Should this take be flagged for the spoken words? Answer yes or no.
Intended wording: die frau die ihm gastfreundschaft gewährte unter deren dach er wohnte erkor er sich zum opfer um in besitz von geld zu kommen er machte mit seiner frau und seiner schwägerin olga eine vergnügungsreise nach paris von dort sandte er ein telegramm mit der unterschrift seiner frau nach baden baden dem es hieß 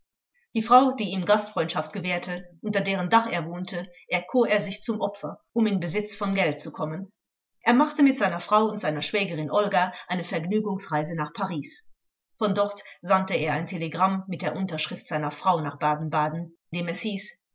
no